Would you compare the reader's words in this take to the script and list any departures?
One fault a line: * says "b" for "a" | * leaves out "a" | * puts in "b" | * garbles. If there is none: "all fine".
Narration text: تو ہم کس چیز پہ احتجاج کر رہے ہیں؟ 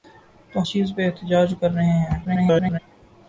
* leaves out "ہم کس"
* garbles